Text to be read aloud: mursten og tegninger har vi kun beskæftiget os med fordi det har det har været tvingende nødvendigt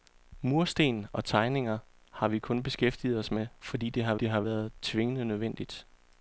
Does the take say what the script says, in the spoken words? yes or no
yes